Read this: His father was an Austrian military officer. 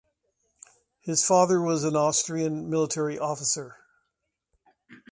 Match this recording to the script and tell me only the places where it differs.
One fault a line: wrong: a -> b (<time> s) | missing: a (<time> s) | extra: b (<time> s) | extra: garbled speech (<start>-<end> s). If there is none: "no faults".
no faults